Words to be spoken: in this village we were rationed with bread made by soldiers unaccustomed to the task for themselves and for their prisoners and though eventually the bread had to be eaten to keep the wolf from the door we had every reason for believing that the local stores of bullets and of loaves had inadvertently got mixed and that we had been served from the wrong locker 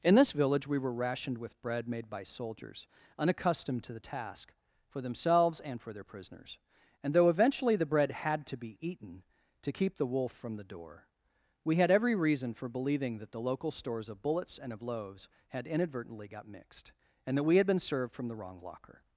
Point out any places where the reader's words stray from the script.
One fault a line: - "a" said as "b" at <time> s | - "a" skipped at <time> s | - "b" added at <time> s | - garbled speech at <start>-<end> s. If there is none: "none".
none